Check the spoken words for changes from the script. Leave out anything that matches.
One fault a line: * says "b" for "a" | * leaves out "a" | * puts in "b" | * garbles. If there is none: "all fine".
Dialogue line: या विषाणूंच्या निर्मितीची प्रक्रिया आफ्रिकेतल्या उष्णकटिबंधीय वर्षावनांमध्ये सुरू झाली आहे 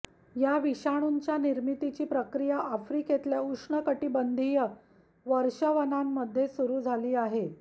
all fine